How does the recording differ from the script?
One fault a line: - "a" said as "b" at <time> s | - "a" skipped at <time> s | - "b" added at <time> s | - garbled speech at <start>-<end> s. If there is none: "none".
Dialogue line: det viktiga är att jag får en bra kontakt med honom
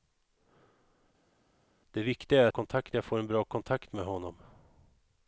- "att" said as "kontakt" at 2.5 s